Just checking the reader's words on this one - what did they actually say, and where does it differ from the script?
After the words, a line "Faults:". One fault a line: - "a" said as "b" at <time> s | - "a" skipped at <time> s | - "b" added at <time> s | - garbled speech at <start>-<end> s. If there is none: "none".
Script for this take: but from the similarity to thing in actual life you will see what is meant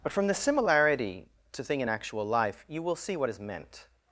but from the similarity to thing in actual life you will see what is meant
Faults:
none